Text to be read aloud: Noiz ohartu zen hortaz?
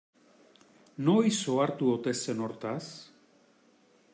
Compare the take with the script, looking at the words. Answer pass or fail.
fail